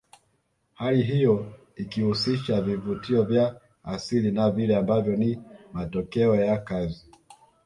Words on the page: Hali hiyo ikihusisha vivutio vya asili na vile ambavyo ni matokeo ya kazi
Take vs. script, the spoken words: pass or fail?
pass